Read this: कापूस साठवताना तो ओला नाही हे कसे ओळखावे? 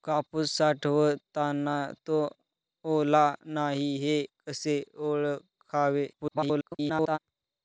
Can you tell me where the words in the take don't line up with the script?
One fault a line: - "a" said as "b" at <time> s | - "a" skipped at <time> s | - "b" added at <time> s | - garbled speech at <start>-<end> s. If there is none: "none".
- garbled speech at 6.1-7.2 s